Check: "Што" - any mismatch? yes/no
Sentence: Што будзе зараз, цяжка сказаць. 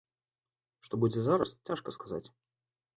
no